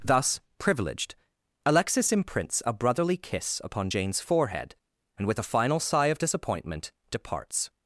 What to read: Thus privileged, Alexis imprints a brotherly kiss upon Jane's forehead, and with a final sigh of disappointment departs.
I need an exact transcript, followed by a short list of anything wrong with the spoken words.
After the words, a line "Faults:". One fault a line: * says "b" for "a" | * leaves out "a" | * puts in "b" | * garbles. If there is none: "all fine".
Thus privileged, Alexis imprints a brotherly kiss upon Jane's forehead, and with a final sigh of disappointment departs.
Faults:
all fine